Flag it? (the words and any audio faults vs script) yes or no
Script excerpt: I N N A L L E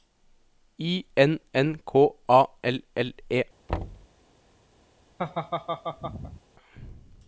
yes